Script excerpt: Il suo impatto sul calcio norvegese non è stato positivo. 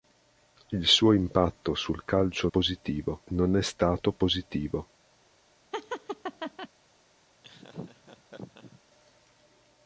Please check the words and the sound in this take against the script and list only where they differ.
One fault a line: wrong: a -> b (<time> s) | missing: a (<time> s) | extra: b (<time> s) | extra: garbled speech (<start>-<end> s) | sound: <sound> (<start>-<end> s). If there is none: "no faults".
wrong: norvegese -> positivo (2.5 s)
sound: laugh (5.7-6.7 s)
sound: laugh (7.4-8.8 s)